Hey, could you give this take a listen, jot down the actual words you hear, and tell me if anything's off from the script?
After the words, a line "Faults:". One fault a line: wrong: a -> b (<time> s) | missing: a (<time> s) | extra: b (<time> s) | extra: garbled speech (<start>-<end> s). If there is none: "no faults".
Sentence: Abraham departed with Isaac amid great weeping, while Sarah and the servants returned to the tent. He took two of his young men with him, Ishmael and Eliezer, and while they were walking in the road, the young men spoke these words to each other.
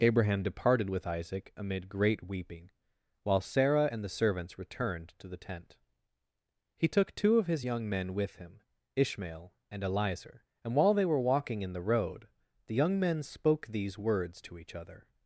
Abraham departed with Isaac amid great weeping, while Sarah and the servants returned to the tent. He took two of his young men with him, Ishmael and Eliezer, and while they were walking in the road, the young men spoke these words to each other.
Faults:
no faults